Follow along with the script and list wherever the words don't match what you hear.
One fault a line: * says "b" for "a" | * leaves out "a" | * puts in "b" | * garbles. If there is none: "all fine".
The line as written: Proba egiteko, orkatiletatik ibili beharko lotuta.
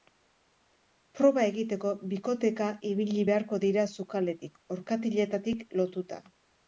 * says "bikoteka" for "orkatiletatik"
* puts in "dira sukaldetik orkatiletatik"